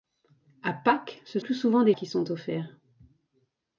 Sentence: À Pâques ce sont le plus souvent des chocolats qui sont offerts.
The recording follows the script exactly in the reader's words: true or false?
false